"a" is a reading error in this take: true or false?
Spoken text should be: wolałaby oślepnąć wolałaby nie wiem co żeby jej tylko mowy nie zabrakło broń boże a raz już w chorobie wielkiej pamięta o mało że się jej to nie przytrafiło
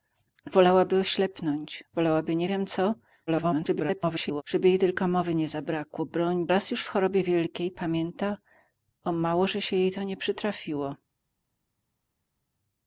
true